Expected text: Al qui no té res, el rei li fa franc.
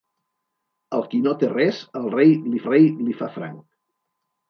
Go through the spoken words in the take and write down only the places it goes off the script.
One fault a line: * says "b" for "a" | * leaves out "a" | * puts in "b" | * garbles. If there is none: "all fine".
* puts in "rei li"